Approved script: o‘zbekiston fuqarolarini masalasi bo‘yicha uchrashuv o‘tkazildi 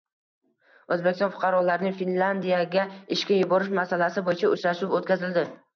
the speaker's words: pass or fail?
fail